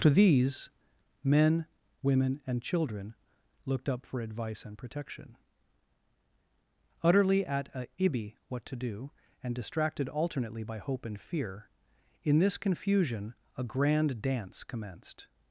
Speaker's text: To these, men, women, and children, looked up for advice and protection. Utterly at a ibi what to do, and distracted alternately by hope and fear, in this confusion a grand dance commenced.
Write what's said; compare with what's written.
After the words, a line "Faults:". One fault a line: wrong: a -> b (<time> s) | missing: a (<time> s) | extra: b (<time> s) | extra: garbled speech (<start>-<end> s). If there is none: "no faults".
To these, men, women, and children, looked up for advice and protection. Utterly at a ibi what to do, and distracted alternately by hope and fear, in this confusion a grand dance commenced.
Faults:
no faults